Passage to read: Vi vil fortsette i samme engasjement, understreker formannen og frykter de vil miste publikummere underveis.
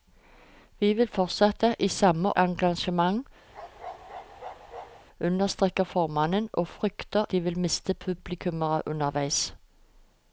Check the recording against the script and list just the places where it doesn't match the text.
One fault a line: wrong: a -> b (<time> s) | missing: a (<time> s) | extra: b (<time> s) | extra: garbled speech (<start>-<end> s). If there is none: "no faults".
no faults